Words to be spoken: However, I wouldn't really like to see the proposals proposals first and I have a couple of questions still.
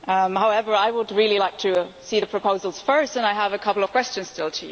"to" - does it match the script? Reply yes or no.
yes